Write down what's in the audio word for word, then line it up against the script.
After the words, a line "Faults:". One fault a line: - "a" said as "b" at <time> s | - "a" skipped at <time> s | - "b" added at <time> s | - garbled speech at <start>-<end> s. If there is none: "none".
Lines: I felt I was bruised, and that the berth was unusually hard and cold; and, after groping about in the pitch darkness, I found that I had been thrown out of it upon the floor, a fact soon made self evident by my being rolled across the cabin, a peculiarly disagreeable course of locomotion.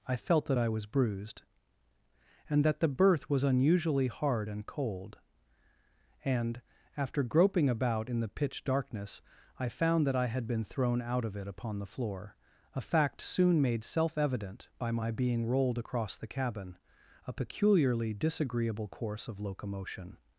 I felt that I was bruised, and that the berth was unusually hard and cold; and, after groping about in the pitch darkness, I found that I had been thrown out of it upon the floor, a fact soon made self evident by my being rolled across the cabin, a peculiarly disagreeable course of locomotion.
Faults:
- "that" added at 0.5 s